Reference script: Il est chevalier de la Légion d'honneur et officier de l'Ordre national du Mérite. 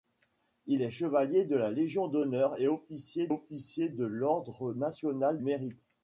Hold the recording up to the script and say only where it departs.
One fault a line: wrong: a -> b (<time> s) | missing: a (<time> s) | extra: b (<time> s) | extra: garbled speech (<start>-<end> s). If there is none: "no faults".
extra: officier (3.3 s)
missing: du (5.4 s)